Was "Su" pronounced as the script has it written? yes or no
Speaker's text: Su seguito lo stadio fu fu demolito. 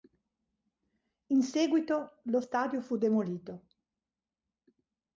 no